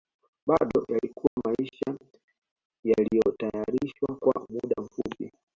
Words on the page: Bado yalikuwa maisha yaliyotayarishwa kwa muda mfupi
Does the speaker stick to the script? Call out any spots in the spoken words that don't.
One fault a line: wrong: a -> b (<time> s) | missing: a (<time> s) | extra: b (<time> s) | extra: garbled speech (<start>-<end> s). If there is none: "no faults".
no faults